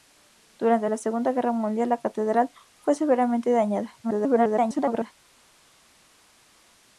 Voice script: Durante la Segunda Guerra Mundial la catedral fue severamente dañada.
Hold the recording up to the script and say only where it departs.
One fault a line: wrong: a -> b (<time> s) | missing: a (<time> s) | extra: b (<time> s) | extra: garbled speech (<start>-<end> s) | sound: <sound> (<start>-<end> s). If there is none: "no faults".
extra: garbled speech (4.0-5.1 s)